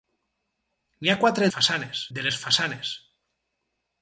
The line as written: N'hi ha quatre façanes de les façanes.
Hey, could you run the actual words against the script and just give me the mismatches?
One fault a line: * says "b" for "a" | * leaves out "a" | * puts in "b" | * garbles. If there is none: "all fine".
all fine